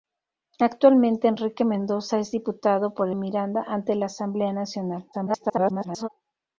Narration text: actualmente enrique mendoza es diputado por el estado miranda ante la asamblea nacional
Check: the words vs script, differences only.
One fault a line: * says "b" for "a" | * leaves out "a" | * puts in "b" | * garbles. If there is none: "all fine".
* leaves out "el estado"
* garbles